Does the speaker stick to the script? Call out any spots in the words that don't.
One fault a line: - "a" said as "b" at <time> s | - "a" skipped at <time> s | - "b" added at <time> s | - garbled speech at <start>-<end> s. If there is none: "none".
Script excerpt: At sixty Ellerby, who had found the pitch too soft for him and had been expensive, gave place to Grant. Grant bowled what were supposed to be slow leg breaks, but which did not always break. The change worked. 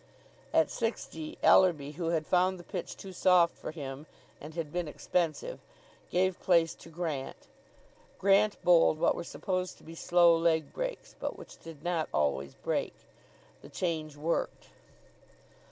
none